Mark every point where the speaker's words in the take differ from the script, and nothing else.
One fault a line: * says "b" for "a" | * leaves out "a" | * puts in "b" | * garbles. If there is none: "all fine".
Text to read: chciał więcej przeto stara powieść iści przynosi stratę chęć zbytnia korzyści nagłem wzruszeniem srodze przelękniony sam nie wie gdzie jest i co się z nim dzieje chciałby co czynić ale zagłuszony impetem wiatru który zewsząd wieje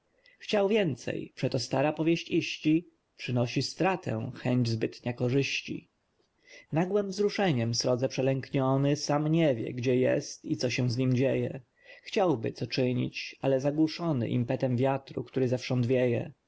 all fine